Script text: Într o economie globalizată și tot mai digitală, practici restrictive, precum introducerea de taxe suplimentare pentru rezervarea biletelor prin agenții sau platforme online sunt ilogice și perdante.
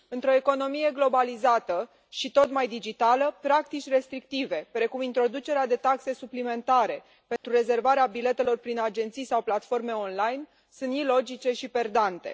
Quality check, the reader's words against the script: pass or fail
pass